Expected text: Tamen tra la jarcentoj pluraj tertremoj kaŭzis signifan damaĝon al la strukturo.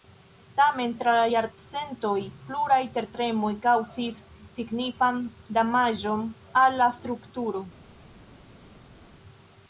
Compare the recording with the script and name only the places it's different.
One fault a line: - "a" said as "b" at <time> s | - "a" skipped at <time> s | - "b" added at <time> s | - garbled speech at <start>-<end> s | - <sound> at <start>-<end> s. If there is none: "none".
none